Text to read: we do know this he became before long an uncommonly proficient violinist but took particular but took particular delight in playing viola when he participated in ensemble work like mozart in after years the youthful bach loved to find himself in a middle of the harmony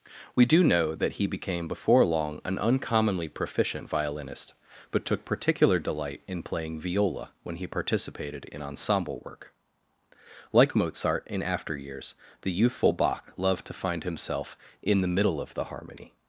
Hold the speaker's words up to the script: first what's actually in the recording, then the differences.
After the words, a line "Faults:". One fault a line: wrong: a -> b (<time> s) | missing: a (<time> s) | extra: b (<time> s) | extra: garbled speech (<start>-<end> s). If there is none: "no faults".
we do know that he became before long an uncommonly proficient violinist but took particular delight in playing viola when he participated in ensemble work like mozart in after years the youthful bach loved to find himself in the middle of the harmony
Faults:
wrong: this -> that (0.9 s)
missing: but took particular (5.8 s)
wrong: a -> the (15.0 s)